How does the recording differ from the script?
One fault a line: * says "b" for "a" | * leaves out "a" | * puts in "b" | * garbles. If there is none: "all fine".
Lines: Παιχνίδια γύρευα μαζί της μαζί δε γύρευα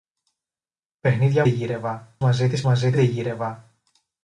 all fine